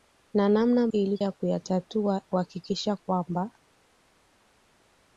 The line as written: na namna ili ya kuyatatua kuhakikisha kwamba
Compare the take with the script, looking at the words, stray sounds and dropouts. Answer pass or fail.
pass